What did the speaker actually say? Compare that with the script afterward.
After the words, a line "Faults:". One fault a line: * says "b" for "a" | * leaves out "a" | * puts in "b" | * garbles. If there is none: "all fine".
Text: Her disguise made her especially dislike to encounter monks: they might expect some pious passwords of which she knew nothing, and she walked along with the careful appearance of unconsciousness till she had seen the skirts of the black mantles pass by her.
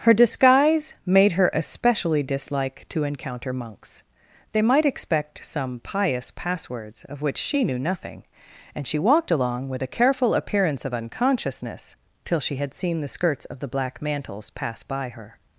Her disguise made her especially dislike to encounter monks: they might expect some pious passwords of which she knew nothing, and she walked along with a careful appearance of unconsciousness till she had seen the skirts of the black mantles pass by her.
Faults:
* says "a" for "the"